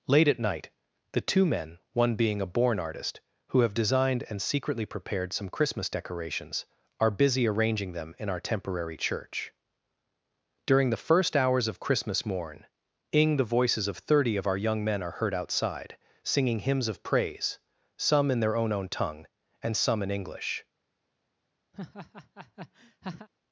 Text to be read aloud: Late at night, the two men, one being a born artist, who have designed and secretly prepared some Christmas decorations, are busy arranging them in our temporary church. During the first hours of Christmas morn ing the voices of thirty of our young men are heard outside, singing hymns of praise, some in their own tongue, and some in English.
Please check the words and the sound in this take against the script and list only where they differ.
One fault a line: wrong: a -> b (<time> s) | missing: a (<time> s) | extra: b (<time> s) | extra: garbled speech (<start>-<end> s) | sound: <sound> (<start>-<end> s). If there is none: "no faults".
extra: own (18.7 s)
sound: laugh (21.7-23.3 s)